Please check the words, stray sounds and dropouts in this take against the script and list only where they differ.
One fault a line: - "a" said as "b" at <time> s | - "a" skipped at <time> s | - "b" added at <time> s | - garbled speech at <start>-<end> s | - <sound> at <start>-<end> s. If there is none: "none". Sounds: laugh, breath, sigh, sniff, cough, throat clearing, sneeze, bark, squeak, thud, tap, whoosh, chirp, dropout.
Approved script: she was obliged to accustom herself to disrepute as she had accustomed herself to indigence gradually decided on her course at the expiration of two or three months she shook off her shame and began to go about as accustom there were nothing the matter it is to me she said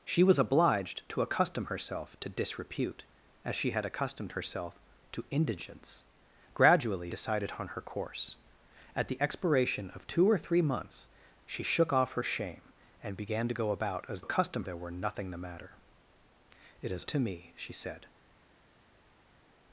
none